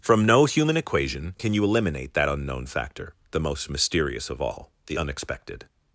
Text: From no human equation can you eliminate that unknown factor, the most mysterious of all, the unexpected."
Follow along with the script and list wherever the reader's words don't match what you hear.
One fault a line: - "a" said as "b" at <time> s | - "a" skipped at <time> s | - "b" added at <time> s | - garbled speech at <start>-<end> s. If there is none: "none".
none